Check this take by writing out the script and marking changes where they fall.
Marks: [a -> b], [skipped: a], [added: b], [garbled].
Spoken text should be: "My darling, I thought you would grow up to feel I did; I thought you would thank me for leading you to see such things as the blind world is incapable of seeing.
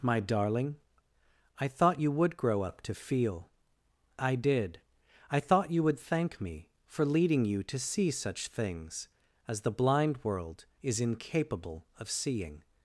"My darling, I thought you would grow up to feel I did; I thought you would thank me for leading you to see such things as the blind world is incapable of seeing.